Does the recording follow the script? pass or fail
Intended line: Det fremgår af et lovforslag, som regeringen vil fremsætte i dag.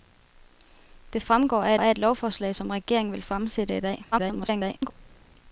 fail